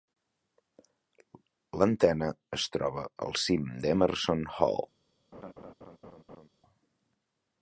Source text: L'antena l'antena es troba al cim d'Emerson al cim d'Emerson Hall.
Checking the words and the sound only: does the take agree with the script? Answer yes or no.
no